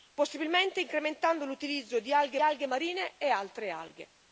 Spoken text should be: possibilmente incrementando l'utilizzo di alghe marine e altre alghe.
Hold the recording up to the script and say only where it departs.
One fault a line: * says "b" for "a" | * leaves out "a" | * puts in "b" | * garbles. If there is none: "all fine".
* puts in "alghe"